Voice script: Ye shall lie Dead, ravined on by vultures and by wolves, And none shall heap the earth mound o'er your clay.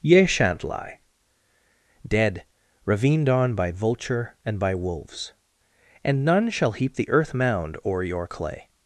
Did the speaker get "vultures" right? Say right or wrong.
wrong